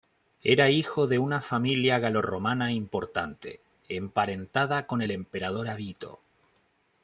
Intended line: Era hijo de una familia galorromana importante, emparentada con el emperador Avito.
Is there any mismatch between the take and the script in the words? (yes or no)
no